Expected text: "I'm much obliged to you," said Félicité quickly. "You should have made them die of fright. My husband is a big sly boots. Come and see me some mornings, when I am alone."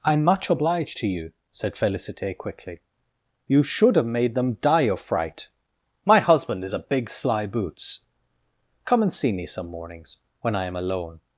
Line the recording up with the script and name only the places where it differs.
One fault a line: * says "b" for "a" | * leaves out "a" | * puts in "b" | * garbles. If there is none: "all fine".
all fine